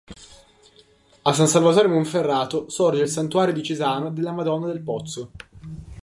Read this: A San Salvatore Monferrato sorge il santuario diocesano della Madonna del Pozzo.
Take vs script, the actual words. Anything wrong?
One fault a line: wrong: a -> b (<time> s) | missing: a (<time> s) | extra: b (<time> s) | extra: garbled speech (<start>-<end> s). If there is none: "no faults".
no faults